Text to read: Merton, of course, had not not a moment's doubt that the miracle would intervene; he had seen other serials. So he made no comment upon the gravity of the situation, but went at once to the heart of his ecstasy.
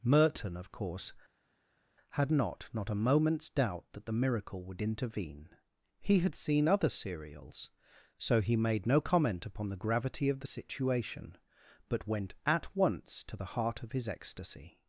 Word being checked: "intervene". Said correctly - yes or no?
yes